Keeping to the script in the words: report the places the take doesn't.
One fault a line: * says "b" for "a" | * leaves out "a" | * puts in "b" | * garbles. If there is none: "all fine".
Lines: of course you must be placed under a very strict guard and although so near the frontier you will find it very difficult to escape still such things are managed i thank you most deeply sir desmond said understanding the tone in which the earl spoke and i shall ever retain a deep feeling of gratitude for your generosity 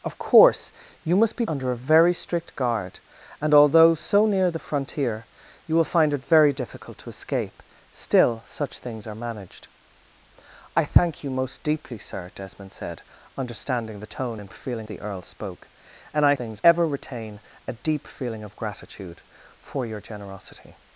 * leaves out "placed"
* says "feeling" for "which"
* says "things" for "shall"